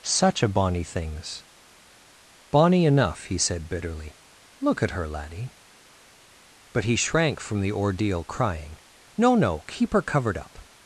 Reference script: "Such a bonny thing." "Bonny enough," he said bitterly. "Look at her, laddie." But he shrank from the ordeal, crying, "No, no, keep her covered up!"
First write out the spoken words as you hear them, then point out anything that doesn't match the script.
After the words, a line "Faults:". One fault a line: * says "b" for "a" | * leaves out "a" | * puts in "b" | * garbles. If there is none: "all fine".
"Such a bonny things." "Bonny enough," he said bitterly. "Look at her, laddie." But he shrank from the ordeal, crying, "No, no, keep her covered up!"
Faults:
* says "things" for "thing"